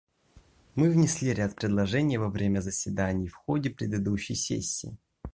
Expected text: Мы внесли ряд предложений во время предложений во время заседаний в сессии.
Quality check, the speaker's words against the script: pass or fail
fail